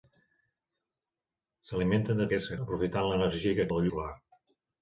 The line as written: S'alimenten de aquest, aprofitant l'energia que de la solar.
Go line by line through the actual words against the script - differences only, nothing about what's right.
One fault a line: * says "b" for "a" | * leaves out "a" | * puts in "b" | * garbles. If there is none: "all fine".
all fine